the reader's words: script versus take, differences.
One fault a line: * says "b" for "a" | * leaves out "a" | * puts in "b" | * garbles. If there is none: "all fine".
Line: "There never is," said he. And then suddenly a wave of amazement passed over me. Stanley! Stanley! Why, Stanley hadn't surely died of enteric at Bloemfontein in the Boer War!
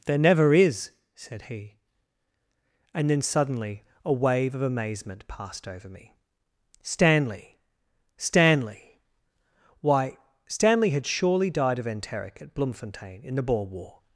* says "had" for "hadn't"